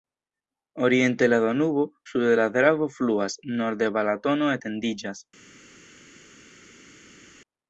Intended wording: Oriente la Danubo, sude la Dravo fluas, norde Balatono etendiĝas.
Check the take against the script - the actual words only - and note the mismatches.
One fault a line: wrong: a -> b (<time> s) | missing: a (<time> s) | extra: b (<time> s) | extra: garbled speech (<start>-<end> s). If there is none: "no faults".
no faults